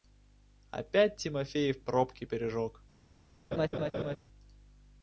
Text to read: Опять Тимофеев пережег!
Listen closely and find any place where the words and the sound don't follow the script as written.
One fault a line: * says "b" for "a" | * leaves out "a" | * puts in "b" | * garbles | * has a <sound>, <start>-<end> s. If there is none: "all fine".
* puts in "пробки"
* has a laugh, 3.5-4.2 s